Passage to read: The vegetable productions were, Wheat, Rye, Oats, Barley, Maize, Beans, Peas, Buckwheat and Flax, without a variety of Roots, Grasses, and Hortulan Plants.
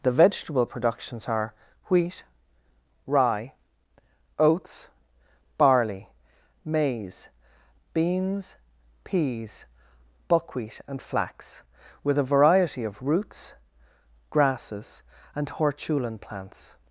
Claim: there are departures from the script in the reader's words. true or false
true